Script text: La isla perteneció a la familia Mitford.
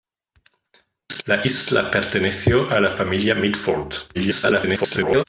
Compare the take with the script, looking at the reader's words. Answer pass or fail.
fail